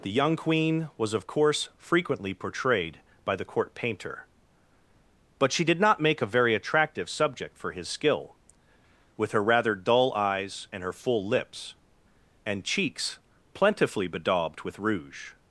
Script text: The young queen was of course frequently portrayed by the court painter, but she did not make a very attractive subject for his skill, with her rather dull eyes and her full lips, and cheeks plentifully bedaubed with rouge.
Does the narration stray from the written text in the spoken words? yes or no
no